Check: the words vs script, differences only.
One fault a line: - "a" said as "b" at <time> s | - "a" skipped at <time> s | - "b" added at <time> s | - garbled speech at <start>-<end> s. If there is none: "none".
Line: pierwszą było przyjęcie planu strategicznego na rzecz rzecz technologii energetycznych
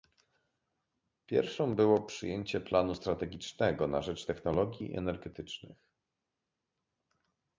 - "rzecz" skipped at 4.3 s